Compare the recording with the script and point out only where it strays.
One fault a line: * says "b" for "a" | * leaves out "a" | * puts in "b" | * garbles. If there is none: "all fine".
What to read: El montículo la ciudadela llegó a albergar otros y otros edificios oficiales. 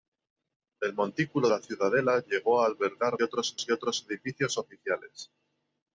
all fine